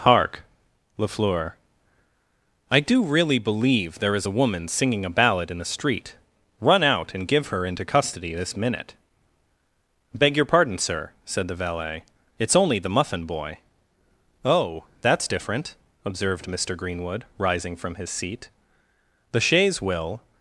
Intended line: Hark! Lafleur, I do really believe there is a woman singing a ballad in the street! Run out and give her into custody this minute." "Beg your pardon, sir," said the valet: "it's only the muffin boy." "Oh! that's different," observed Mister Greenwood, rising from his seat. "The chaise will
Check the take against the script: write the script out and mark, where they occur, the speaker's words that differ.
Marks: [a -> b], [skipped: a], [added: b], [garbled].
Hark! Lafleur, I do really believe there is a woman singing a ballad in the street! Run out and give her into custody this minute." "Beg your pardon, sir," said the valet: "it's only the muffin boy." "Oh! that's different," observed Mister Greenwood, rising from his seat. "The chaise will